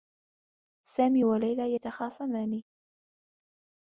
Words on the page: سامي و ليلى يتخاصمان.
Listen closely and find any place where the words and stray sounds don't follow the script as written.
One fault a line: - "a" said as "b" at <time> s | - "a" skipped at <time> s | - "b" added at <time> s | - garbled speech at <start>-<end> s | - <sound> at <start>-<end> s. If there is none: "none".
none